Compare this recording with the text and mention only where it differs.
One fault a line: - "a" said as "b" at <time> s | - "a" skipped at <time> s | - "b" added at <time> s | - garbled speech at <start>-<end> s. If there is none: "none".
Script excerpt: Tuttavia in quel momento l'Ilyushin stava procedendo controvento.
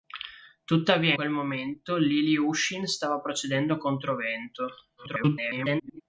- "in" skipped at 1.1 s
- garbled speech at 5.0-6.0 s